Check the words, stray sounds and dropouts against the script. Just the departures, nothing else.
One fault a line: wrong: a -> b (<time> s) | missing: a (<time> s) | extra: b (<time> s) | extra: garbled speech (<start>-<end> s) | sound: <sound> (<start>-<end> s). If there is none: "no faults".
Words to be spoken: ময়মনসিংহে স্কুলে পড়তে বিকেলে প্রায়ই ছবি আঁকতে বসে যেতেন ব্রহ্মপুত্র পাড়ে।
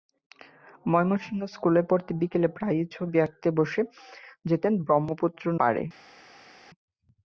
no faults